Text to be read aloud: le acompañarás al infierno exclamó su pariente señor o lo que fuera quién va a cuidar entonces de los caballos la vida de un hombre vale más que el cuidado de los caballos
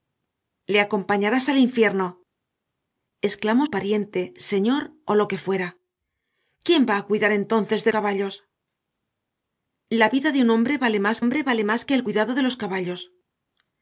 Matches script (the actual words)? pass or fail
fail